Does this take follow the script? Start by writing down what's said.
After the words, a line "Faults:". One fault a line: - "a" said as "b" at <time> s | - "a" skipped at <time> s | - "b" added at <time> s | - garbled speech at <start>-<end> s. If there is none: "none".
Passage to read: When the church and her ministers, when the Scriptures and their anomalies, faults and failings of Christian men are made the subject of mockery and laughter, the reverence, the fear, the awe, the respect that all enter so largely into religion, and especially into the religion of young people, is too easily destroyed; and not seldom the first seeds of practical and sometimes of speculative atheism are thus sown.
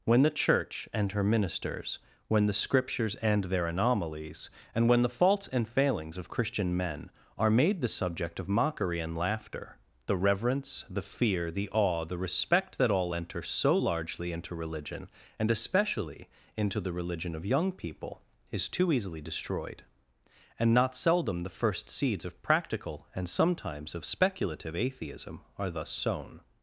When the church and her ministers, when the Scriptures and their anomalies, and when the faults and failings of Christian men are made the subject of mockery and laughter, the reverence, the fear, the awe, the respect that all enter so largely into religion, and especially into the religion of young people, is too easily destroyed; and not seldom the first seeds of practical and sometimes of speculative atheism are thus sown.
Faults:
- "and when the" added at 4.7 s